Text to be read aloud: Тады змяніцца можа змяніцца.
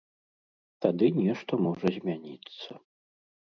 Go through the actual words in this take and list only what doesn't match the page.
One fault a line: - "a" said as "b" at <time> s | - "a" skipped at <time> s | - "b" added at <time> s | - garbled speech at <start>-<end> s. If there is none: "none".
- "змяніцца" said as "нешта" at 1.2 s